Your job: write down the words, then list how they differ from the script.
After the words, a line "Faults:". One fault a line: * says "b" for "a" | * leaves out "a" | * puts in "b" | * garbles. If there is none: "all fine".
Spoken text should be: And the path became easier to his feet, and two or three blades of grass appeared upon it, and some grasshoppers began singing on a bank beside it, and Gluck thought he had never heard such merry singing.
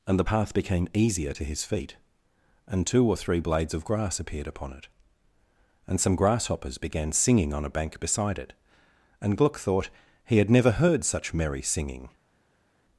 And the path became easier to his feet, and two or three blades of grass appeared upon it, and some grasshoppers began singing on a bank beside it, and Gluck thought he had never heard such merry singing.
Faults:
all fine